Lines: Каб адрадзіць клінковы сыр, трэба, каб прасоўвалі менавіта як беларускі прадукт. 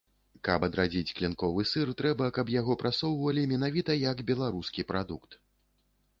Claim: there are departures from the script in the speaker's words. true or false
true